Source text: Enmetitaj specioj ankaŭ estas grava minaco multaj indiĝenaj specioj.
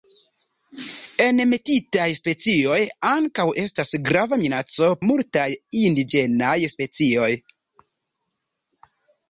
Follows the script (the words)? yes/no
yes